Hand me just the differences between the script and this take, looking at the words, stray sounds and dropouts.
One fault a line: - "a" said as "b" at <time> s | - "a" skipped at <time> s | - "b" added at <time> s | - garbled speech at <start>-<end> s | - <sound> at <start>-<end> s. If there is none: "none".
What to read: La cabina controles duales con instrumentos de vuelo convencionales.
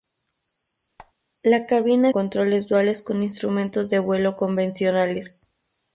- squeak at 1.0-1.1 s